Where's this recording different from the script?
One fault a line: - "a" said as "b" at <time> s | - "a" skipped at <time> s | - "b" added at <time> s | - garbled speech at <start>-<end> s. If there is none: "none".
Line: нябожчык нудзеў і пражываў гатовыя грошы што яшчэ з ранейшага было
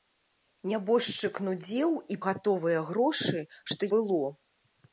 - "пражываў" skipped at 2.2 s
- "яшчэ з ранейшага" skipped at 3.8 s